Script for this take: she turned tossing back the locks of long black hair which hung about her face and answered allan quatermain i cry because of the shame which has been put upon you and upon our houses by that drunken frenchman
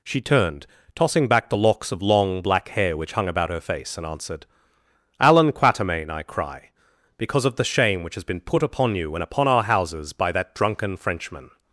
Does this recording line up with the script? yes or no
yes